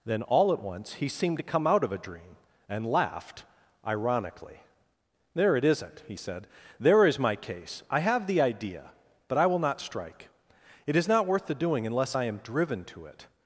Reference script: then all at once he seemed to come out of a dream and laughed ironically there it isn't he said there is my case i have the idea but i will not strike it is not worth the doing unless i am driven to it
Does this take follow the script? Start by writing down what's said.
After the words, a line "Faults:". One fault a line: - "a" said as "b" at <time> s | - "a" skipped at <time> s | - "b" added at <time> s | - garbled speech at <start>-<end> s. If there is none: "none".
then all at once he seemed to come out of a dream and laughed ironically there it isn't he said there is my case i have the idea but i will not strike it is not worth the doing unless i am driven to it
Faults:
none